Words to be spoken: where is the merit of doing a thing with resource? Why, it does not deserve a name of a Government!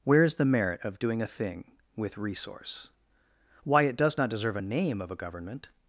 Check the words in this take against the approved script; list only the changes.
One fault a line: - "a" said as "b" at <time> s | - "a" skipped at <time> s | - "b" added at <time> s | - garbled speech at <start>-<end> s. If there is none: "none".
none